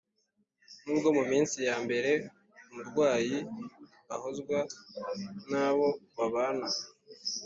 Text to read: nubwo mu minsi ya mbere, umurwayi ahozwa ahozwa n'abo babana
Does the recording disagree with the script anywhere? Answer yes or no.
yes